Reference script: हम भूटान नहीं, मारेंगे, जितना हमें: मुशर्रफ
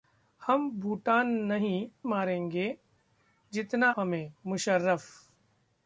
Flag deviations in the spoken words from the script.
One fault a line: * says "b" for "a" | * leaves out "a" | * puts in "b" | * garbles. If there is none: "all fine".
all fine